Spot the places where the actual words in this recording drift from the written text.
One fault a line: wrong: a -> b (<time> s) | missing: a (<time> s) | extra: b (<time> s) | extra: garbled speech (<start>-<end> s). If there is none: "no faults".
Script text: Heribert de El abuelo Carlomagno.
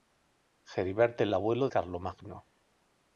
no faults